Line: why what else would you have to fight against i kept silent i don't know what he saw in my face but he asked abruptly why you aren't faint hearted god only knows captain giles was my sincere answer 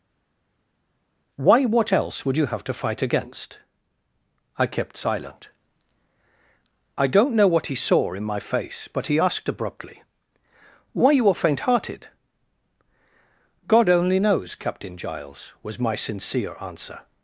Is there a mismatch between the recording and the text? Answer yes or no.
yes